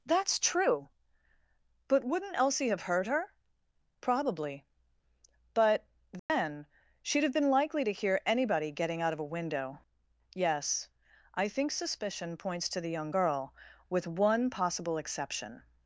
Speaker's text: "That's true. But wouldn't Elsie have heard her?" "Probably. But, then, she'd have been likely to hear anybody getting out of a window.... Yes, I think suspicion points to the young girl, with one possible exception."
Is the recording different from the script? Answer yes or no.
no